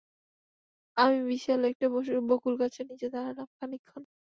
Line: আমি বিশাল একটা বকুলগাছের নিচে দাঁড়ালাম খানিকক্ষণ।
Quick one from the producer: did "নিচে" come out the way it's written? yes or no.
yes